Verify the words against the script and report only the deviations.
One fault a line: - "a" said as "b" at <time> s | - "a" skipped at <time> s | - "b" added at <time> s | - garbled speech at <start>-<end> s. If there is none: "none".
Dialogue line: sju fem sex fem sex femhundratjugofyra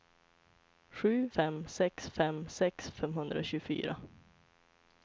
none